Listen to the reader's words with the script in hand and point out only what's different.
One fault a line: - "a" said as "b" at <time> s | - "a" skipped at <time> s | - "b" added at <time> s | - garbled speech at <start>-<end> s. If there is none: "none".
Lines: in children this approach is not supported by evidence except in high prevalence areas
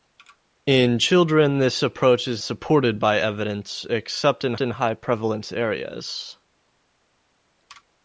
- "not" skipped at 2.4 s
- "in" added at 4.6 s